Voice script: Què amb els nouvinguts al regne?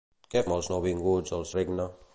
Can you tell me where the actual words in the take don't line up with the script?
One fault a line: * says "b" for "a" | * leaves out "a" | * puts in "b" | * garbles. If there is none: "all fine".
all fine